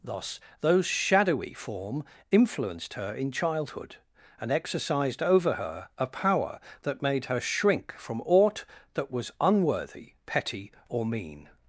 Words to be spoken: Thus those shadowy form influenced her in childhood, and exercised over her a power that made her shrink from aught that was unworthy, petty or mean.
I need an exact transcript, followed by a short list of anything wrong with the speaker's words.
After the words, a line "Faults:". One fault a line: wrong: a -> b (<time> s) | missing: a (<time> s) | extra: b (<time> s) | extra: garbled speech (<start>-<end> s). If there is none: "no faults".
Thus those shadowy form influenced her in childhood, and exercised over her a power that made her shrink from aught that was unworthy, petty or mean.
Faults:
no faults